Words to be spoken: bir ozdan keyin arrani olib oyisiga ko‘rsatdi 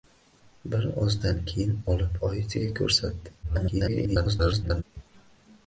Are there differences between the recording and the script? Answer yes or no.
yes